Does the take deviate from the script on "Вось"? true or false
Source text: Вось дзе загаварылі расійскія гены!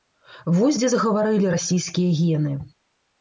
false